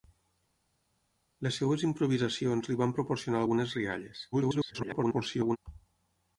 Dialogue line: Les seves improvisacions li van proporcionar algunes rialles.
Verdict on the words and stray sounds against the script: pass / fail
fail